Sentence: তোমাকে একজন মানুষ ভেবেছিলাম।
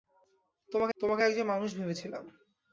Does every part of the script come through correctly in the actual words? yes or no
no